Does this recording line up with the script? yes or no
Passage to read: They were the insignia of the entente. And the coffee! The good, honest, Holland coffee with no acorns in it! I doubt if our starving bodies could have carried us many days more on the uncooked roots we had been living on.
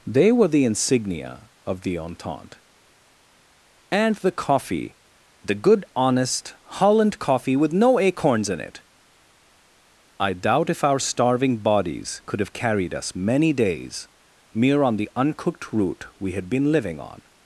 no